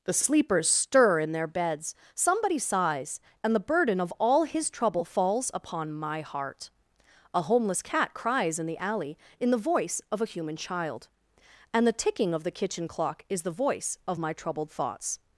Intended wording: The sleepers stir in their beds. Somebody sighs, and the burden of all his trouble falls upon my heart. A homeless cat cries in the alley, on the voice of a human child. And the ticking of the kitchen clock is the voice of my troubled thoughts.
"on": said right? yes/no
no